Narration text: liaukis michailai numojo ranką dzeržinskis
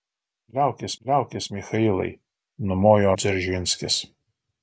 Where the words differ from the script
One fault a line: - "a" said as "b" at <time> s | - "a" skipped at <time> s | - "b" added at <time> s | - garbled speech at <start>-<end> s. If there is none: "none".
- "liaukis" added at 1.0 s
- "ranką" skipped at 3.1 s